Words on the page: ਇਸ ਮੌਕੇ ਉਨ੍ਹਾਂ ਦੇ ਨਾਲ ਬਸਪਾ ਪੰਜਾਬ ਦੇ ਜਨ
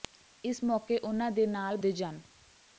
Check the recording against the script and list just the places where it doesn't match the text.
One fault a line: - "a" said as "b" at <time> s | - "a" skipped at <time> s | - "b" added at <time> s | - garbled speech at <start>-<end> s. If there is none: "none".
- "ਬਸਪਾ ਪੰਜਾਬ" skipped at 1.8 s